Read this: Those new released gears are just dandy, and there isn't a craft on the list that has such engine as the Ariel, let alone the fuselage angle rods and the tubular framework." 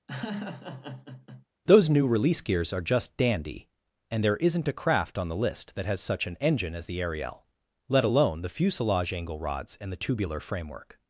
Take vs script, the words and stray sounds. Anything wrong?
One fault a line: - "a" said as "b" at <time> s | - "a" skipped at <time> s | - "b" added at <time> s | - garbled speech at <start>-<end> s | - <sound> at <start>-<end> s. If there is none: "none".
- laugh at 0.1-1.4 s
- "released" said as "release" at 2.1 s
- "an" added at 6.2 s